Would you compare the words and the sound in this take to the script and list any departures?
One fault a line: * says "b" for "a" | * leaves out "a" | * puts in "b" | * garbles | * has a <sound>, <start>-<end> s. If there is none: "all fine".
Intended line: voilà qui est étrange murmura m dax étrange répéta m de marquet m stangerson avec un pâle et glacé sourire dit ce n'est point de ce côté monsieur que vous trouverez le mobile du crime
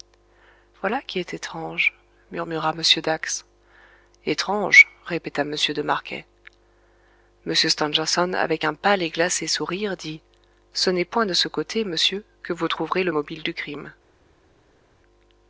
all fine